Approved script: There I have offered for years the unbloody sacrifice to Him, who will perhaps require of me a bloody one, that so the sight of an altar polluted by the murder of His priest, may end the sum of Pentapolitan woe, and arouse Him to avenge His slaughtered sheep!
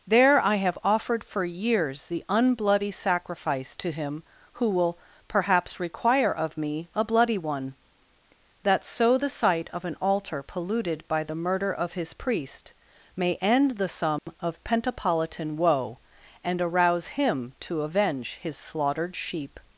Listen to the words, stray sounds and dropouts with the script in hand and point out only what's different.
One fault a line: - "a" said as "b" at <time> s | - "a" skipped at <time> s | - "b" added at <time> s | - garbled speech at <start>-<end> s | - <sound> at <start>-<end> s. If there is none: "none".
- dropout at 14.2-14.3 s